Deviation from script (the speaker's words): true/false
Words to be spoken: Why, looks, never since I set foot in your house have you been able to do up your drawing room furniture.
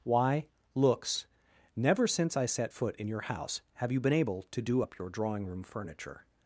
false